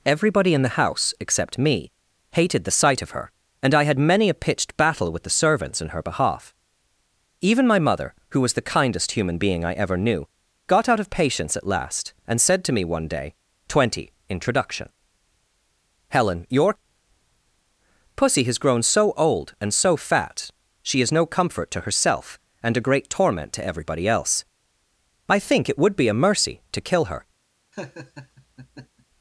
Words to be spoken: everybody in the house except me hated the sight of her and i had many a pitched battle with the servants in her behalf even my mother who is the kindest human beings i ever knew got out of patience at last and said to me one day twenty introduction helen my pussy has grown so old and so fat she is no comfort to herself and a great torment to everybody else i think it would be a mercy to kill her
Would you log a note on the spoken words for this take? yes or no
yes